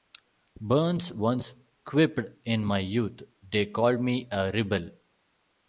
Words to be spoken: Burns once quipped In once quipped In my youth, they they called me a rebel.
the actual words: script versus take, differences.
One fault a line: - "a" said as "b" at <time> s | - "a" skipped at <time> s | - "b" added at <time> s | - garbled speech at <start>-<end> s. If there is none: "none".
- "once quipped In" skipped at 2.6 s
- "they" skipped at 3.7 s